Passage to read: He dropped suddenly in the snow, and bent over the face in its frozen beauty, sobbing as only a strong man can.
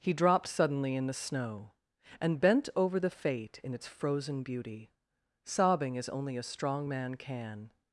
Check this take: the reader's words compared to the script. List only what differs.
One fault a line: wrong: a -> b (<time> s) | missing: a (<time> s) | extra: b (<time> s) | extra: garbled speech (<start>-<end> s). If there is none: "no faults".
wrong: face -> fate (3.1 s)